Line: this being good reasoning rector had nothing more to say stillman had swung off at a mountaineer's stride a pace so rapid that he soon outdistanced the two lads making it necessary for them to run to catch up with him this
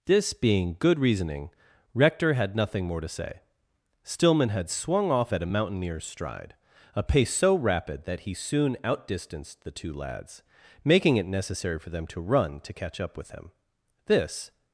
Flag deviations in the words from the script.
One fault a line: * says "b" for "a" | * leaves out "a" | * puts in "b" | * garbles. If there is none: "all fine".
all fine